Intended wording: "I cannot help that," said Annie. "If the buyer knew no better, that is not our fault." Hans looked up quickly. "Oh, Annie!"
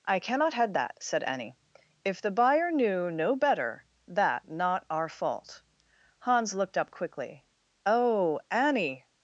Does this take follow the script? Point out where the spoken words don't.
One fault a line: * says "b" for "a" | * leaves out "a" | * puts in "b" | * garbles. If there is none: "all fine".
* says "head" for "help"
* leaves out "is"